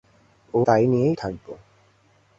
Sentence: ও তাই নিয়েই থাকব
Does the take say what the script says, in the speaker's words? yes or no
yes